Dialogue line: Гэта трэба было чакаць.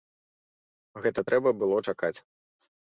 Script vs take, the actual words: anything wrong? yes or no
no